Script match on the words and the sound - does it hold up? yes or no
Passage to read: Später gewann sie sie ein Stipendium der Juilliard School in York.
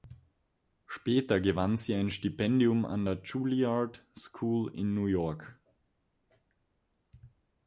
no